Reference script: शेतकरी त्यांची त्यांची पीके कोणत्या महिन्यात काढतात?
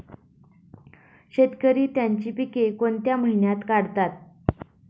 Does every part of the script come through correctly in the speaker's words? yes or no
no